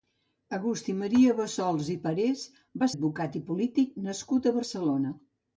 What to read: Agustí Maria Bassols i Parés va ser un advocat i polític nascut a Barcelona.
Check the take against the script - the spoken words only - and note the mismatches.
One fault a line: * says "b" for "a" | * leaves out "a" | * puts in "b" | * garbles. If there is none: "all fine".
* leaves out "ser un"